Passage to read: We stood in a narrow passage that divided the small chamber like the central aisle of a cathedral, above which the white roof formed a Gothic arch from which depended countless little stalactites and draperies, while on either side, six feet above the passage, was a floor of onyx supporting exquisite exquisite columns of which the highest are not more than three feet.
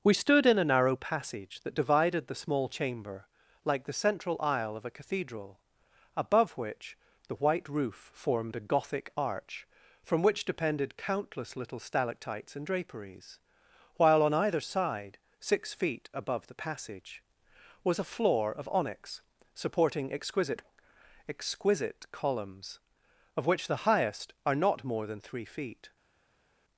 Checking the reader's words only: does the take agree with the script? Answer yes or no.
yes